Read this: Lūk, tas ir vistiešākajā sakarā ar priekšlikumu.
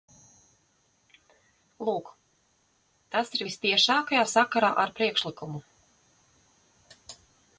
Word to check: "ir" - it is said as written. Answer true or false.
true